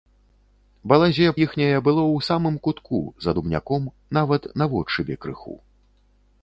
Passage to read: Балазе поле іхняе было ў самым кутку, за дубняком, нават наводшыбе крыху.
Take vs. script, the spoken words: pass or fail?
fail